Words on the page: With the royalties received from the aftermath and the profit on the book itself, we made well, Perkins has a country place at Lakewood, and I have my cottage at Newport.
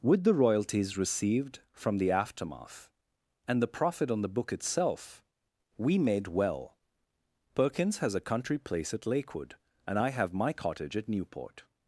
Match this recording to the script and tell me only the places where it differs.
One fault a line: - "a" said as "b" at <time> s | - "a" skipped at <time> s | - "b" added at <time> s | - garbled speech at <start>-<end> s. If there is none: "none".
none